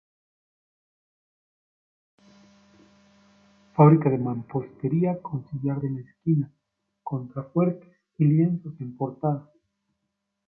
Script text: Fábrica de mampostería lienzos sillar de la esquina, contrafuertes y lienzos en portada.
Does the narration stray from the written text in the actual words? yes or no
yes